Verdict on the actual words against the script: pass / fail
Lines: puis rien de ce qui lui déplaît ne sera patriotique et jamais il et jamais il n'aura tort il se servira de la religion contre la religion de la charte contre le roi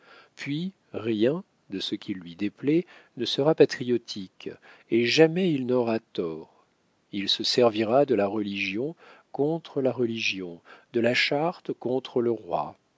fail